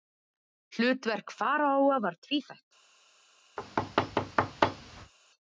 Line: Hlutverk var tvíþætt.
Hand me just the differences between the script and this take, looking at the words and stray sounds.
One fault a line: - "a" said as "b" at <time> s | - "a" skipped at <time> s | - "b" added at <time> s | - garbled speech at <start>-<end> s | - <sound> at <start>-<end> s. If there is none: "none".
- "faraóa" added at 1.4 s
- thud at 3.6-5.1 s